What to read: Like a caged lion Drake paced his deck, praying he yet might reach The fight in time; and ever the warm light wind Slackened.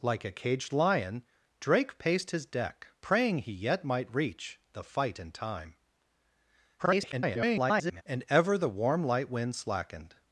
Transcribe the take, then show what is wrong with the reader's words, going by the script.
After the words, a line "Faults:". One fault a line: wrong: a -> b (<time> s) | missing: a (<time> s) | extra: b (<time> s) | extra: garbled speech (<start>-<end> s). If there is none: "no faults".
Like a caged lion Drake paced his deck, praying he yet might reach The fight in time; [garbled] and ever the warm light wind Slackened.
Faults:
extra: garbled speech (6.8-8.0 s)